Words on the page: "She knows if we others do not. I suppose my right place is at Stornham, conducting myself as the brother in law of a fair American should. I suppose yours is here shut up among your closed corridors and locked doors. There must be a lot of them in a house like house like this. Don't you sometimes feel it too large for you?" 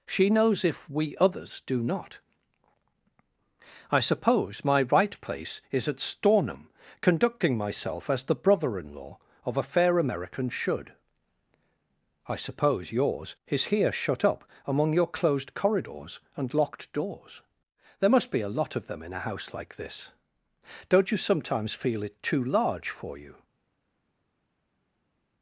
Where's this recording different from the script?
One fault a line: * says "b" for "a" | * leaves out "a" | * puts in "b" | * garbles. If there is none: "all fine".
* leaves out "house like"